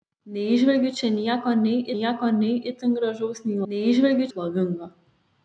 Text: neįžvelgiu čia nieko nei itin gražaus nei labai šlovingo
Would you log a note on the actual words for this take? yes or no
yes